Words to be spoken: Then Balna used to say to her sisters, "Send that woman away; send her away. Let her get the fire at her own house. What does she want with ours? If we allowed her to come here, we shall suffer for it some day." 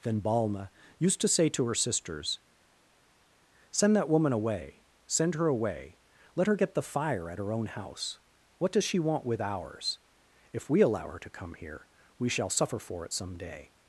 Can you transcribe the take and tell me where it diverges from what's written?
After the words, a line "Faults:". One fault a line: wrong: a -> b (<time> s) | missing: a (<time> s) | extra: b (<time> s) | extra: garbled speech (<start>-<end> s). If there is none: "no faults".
Then Balna used to say to her sisters, "Send that woman away; send her away. Let her get the fire at her own house. What does she want with ours? If we allow her to come here, we shall suffer for it some day."
Faults:
wrong: allowed -> allow (10.8 s)